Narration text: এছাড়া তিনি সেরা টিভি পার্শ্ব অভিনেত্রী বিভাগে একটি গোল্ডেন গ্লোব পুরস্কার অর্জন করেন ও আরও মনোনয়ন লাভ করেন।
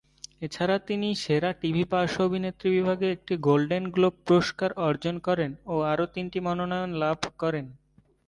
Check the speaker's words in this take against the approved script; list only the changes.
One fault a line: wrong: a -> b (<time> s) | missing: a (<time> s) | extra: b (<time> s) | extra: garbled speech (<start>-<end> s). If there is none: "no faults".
extra: তিনটি (6.2 s)